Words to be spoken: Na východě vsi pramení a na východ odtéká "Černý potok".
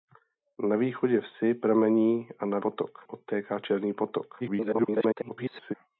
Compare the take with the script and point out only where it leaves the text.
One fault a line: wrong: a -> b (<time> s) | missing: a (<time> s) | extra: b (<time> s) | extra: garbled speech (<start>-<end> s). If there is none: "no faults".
wrong: východ -> potok (2.6 s)
extra: garbled speech (4.4-5.7 s)